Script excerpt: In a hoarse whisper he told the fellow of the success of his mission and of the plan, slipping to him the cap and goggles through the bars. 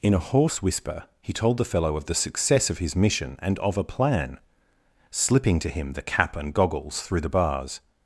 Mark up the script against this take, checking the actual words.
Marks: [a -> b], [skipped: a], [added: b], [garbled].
In a hoarse whisper he told the fellow of the success of his mission and of [the -> a] plan, slipping to him the cap and goggles through the bars.